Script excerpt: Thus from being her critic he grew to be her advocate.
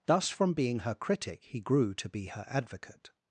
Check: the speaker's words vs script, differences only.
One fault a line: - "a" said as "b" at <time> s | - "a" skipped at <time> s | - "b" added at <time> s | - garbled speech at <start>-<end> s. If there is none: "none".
none